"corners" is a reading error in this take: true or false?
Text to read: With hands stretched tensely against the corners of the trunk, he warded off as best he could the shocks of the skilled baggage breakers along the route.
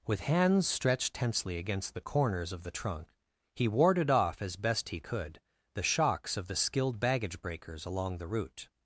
false